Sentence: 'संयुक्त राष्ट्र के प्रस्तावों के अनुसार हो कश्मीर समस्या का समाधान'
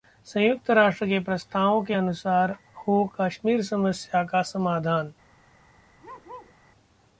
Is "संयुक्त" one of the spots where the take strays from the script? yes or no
no